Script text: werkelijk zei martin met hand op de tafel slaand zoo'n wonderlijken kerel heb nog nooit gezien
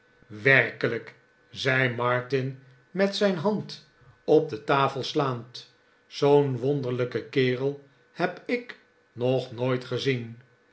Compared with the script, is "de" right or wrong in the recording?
right